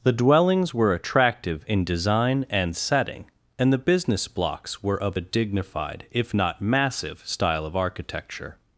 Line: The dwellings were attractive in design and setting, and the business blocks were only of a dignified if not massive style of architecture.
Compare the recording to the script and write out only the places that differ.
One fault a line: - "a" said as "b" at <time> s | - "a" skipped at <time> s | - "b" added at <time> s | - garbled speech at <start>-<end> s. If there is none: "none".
- "only" skipped at 5.0 s